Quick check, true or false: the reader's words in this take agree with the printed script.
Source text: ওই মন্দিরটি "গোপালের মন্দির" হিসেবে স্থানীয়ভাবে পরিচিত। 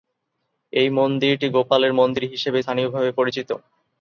false